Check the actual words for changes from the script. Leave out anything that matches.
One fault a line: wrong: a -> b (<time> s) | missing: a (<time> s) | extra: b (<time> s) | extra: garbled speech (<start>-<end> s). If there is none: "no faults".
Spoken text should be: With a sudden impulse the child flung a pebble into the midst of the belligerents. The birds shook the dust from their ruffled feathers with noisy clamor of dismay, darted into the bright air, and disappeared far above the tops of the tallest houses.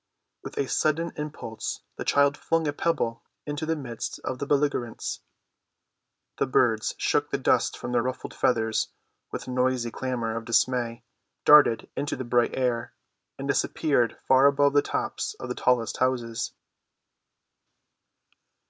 no faults